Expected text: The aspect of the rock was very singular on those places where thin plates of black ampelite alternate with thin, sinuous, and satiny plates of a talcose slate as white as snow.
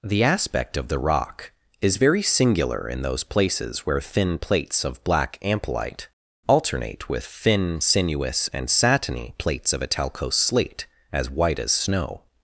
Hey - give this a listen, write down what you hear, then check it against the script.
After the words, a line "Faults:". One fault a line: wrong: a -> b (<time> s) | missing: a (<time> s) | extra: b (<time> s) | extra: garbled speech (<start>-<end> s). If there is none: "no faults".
The aspect of the rock is very singular in those places where thin plates of black ampelite alternate with thin, sinuous, and satiny plates of a talcose slate as white as snow.
Faults:
wrong: was -> is (1.8 s)
wrong: on -> in (2.9 s)